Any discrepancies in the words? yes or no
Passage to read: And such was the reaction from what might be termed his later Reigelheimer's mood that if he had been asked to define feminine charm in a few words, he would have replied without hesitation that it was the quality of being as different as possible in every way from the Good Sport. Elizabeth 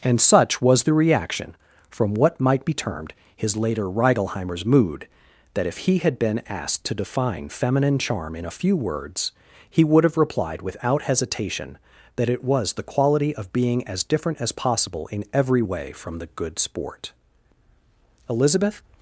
no